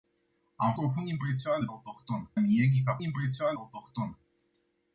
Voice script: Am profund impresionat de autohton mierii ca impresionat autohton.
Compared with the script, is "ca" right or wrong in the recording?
right